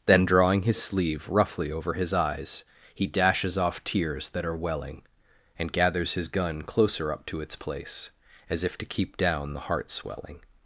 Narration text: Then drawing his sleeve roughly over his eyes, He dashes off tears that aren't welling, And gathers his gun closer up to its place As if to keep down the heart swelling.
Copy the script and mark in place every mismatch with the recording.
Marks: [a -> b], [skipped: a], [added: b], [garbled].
Then drawing his sleeve roughly over his eyes, He dashes off tears that [aren't -> are] welling, And gathers his gun closer up to its place As if to keep down the heart swelling.